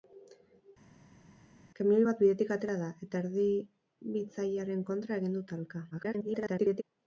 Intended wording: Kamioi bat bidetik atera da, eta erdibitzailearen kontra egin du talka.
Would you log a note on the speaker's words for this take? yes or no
yes